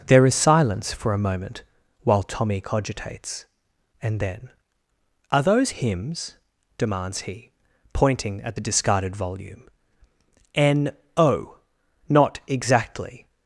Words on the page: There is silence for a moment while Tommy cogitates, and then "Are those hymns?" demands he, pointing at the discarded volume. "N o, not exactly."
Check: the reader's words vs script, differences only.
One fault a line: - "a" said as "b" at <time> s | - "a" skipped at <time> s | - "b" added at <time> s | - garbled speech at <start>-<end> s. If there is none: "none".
none